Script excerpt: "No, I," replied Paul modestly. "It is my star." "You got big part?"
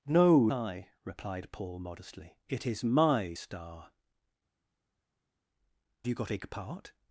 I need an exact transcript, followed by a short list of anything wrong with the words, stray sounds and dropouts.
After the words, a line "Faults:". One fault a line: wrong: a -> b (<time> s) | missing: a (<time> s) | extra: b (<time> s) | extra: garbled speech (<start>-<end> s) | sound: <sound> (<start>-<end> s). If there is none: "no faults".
"No, I," replied Paul modestly. "It is my star." "You got big part?"
Faults:
no faults